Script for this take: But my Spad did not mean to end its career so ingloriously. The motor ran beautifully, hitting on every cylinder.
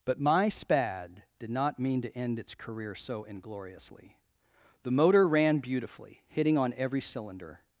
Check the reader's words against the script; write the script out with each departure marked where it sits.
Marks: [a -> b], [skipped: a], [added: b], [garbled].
But my Spad did not mean to end its career so ingloriously. The motor ran beautifully, hitting on every cylinder.